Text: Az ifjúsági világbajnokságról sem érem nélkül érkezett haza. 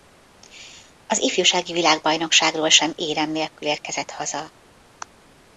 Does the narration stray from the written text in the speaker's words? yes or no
no